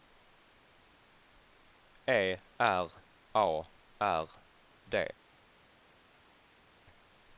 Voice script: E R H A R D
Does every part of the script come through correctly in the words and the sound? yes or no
no